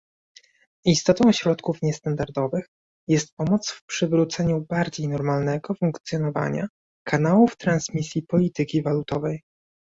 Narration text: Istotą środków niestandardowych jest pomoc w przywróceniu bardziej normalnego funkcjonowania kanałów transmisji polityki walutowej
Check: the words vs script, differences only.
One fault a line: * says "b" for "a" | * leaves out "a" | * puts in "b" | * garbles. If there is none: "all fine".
all fine